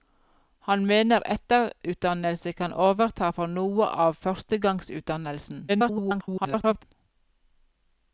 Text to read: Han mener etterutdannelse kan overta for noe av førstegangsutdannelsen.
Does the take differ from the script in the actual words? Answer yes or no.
yes